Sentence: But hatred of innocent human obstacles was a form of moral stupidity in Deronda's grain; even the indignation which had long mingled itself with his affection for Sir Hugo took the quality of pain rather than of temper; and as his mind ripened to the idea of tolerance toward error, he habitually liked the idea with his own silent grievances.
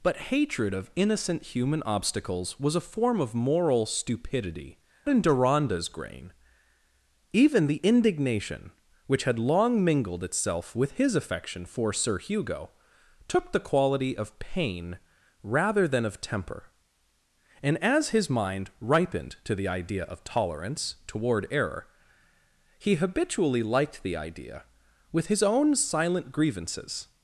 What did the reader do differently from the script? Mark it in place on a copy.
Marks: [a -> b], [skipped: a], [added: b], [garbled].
But hatred of innocent human obstacles was a form of moral stupidity in Deronda's grain; even the indignation which had long mingled itself with his affection for Sir Hugo took the quality of pain rather than of temper; and as his mind ripened to the idea of tolerance toward error, he habitually liked the idea with his own silent grievances.